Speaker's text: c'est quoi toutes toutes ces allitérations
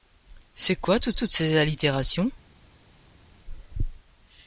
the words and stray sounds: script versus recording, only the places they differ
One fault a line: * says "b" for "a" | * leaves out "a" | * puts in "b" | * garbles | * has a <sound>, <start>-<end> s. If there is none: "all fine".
all fine